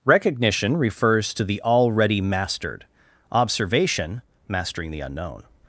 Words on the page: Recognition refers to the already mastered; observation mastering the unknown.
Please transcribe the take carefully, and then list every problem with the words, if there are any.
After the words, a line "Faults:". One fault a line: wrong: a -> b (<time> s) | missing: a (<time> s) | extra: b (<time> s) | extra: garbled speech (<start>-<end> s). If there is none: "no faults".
Recognition refers to the already mastered; observation mastering the unknown.
Faults:
no faults